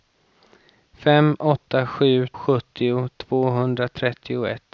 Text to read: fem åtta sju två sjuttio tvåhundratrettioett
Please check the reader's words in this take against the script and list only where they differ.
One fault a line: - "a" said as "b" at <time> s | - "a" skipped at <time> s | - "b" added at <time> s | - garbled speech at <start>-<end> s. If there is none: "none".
- "två" skipped at 2.3 s